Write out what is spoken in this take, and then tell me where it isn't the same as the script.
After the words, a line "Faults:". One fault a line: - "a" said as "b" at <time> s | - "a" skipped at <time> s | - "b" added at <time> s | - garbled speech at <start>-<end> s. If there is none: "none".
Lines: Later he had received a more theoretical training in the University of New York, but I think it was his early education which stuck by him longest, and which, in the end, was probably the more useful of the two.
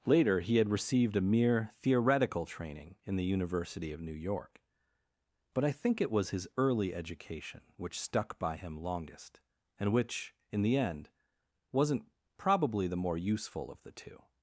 Later he had received a mere theoretical training in the University of New York, but I think it was his early education which stuck by him longest, and which, in the end, wasn't probably the more useful of the two.
Faults:
- "more" said as "mere" at 1.2 s
- "was" said as "wasn't" at 11.7 s